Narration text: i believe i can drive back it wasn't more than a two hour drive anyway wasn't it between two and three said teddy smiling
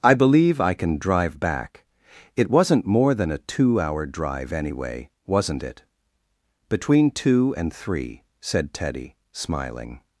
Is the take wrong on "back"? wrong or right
right